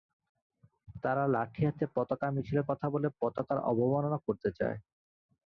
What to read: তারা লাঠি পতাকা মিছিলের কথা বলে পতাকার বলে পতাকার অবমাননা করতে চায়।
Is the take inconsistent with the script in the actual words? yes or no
yes